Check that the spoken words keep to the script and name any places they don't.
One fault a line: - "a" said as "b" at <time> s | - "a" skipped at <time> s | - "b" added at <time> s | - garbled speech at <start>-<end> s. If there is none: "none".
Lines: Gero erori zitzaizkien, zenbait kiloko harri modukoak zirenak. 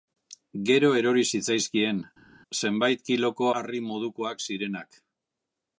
none